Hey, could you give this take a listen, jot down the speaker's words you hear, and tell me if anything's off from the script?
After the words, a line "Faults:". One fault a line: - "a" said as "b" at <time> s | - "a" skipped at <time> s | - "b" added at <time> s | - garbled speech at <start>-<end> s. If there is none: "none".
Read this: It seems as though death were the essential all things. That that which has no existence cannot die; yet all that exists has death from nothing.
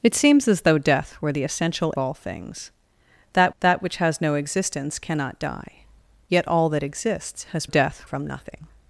It seems as though death were the essential all things. That that which has no existence cannot die; yet all that exists has death from nothing.
Faults:
none